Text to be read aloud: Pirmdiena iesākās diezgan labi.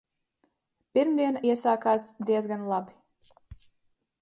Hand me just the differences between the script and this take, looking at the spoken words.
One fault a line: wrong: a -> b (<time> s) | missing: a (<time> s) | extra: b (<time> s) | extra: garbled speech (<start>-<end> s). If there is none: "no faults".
no faults